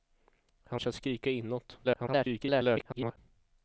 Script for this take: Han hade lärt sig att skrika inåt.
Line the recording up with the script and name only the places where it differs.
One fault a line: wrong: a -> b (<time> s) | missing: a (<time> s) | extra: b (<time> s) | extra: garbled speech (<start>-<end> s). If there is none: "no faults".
missing: hade lärt (0.8 s)
extra: garbled speech (1.8-3.2 s)